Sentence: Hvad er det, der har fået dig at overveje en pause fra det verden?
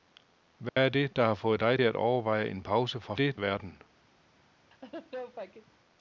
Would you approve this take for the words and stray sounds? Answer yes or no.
no